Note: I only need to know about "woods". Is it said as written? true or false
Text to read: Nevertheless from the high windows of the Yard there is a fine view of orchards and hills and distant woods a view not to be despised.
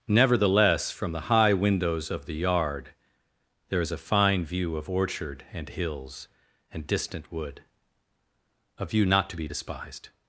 false